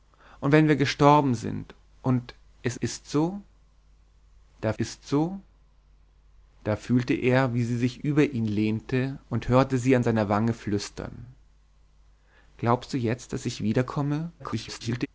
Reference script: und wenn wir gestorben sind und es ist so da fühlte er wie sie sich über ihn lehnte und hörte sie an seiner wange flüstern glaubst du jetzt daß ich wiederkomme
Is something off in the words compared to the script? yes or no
yes